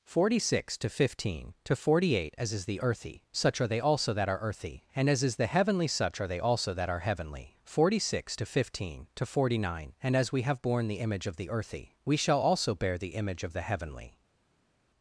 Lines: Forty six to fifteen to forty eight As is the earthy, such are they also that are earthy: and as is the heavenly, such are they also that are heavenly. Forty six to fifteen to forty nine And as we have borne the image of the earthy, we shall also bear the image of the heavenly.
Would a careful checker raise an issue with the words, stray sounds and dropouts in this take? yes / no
no